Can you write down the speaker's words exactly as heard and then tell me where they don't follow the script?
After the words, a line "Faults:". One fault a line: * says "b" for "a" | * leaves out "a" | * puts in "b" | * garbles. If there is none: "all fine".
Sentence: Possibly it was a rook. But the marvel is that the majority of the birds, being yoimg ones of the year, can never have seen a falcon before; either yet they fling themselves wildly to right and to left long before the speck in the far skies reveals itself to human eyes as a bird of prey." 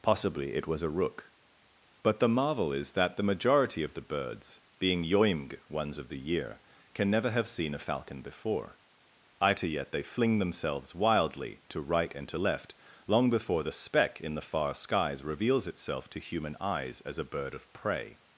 Possibly it was a rook. But the marvel is that the majority of the birds, being yoimg ones of the year, can never have seen a falcon before; either yet they fling themselves wildly to right and to left long before the speck in the far skies reveals itself to human eyes as a bird of prey."
Faults:
all fine